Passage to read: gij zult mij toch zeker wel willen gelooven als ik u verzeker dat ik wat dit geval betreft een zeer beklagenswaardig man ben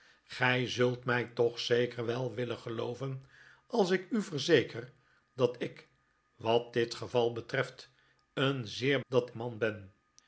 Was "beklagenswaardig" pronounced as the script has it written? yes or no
no